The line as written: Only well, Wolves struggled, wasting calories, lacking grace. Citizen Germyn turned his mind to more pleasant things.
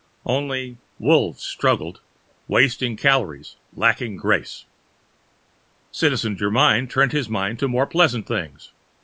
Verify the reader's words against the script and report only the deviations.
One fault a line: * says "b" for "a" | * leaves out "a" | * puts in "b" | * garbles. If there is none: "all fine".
* leaves out "well"